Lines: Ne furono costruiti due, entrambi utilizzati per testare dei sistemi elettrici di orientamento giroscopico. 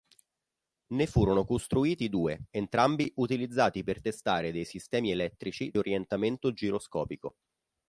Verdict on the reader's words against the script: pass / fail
fail